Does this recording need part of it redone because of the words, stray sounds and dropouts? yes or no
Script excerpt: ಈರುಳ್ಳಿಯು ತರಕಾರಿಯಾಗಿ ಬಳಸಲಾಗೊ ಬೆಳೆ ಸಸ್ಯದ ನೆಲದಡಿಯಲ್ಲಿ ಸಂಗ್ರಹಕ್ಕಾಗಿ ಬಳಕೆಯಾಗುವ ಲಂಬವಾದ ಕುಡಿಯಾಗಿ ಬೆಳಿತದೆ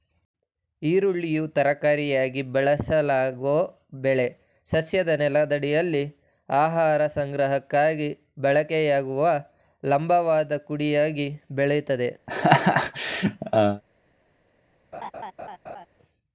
yes